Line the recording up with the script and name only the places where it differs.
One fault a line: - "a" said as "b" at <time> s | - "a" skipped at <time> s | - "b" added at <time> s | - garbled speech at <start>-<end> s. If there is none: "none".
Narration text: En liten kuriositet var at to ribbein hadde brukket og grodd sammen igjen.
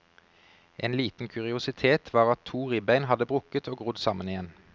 none